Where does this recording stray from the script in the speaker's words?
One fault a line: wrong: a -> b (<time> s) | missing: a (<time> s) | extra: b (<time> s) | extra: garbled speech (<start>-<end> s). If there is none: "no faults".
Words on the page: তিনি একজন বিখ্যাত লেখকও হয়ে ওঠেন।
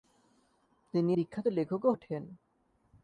missing: একজন (1.1 s)
missing: হয়ে (1.9 s)